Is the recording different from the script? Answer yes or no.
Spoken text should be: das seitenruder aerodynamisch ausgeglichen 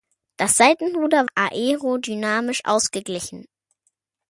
no